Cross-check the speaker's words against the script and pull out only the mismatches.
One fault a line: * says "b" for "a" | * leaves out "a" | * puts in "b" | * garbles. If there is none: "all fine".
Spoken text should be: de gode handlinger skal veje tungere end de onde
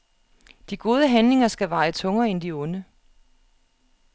all fine